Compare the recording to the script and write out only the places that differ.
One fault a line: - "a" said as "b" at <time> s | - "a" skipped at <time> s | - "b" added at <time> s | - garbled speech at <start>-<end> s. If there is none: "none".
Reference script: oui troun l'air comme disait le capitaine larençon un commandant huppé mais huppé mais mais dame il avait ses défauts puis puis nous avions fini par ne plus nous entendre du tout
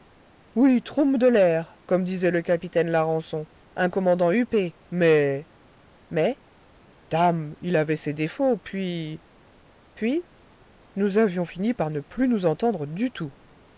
- "de" added at 1.2 s
- "huppé mais" skipped at 5.5 s